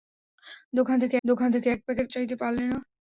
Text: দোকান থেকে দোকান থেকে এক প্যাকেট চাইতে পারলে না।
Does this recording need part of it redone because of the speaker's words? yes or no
no